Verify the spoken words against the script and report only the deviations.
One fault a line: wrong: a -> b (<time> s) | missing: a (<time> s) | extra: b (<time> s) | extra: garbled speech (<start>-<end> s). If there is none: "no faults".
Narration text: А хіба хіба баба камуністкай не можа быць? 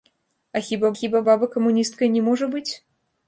no faults